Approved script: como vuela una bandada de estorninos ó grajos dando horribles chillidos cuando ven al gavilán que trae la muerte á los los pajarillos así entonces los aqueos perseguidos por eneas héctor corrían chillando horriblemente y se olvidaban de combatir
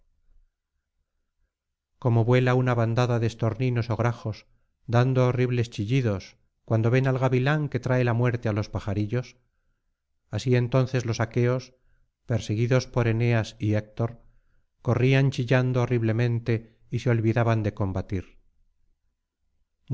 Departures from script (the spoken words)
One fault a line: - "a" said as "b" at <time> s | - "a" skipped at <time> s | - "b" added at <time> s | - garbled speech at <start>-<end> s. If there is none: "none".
- "los" skipped at 8.7 s
- "y" added at 13.6 s